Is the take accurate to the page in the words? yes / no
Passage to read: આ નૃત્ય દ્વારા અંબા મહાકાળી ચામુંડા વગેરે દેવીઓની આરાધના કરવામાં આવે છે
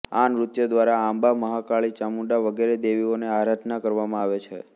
yes